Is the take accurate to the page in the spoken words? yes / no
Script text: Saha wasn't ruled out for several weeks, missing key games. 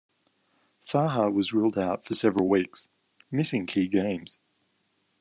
no